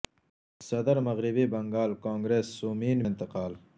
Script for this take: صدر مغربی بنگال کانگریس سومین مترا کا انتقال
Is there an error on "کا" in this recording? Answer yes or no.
yes